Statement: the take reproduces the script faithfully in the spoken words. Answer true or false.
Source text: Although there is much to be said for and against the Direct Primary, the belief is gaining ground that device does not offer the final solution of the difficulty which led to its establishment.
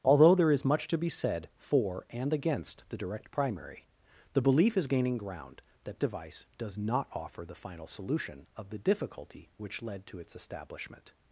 true